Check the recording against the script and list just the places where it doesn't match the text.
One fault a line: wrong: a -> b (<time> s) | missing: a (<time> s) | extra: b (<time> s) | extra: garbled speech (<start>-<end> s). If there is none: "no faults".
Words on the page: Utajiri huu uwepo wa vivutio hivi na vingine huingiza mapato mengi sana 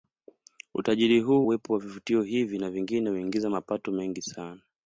no faults